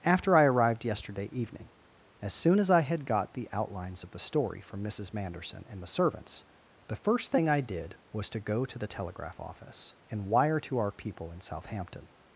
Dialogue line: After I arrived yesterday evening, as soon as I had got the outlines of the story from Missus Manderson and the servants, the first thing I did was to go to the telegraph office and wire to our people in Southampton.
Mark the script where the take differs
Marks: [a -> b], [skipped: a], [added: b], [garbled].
After I arrived yesterday evening, as soon as I had got the outlines of the story from Missus Manderson and the servants, the first thing I did was to go to the telegraph office and wire to our people in Southampton.